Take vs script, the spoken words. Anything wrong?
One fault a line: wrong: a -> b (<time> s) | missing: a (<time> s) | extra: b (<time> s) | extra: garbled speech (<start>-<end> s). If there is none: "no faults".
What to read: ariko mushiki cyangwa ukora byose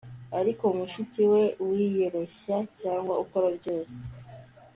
extra: we wiyoroshya (1.3 s)